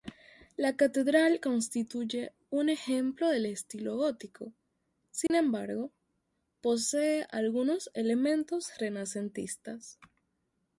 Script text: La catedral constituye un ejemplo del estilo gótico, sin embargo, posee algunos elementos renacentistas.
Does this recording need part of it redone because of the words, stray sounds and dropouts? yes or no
yes